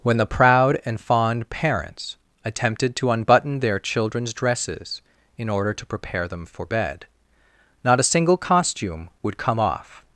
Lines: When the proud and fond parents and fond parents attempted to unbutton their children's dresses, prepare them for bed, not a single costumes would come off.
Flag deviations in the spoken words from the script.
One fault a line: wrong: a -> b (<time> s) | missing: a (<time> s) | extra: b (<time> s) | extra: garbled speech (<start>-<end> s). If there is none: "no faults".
missing: and fond parents (2.2 s)
extra: in order to (5.4 s)
wrong: costumes -> costume (8.4 s)